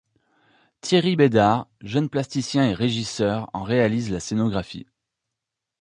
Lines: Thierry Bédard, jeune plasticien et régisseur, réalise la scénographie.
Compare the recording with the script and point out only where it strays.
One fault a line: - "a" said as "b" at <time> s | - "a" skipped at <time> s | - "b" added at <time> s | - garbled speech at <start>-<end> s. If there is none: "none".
- "en" added at 3.5 s